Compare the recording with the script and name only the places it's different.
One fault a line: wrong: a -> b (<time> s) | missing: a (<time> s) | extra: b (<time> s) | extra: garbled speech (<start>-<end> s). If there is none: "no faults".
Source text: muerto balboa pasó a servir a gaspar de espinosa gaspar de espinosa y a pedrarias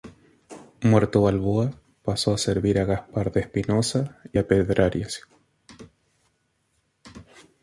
missing: gaspar de espinosa (4.2 s)